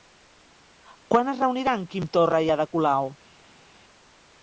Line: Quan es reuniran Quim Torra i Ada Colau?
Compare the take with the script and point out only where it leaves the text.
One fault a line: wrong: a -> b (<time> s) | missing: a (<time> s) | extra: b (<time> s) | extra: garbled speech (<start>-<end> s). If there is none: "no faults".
no faults